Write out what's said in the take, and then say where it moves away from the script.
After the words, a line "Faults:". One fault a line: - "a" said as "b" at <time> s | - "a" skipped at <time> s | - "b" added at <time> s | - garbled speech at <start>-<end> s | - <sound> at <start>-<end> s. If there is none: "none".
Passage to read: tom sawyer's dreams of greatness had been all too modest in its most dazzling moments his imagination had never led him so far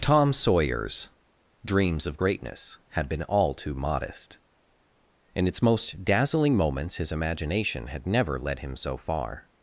tom sawyer's dreams of greatness had been all too modest in its most dazzling moments his imagination had never led him so far
Faults:
none